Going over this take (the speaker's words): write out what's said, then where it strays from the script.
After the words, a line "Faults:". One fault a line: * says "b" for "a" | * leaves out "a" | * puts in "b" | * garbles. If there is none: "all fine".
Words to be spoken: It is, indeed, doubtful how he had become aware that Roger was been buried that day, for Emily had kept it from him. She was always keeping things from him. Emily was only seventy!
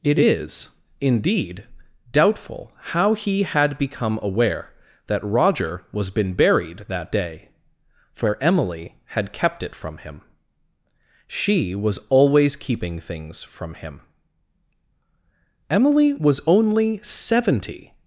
It is, indeed, doubtful how he had become aware that Roger was been buried that day, for Emily had kept it from him. She was always keeping things from him. Emily was only seventy!
Faults:
all fine